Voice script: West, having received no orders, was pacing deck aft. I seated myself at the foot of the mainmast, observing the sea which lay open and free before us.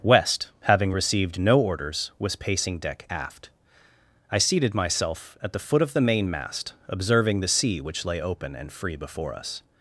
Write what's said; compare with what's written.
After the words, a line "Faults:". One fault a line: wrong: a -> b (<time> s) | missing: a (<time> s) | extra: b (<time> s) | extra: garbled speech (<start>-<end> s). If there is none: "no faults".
West, having received no orders, was pacing deck aft. I seated myself at the foot of the mainmast, observing the sea which lay open and free before us.
Faults:
no faults